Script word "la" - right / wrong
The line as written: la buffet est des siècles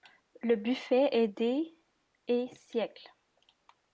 wrong